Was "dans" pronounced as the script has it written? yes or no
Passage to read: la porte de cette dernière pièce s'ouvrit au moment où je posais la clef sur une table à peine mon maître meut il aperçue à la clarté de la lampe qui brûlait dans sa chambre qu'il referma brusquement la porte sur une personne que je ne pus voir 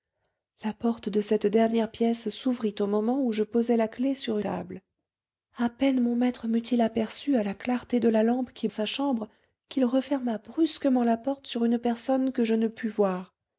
no